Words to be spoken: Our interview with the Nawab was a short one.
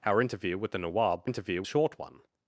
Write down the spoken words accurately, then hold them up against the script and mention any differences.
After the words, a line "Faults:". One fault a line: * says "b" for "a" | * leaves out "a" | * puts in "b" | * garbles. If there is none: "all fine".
Our interview with the Nawab interview a short one.
Faults:
* says "interview" for "was"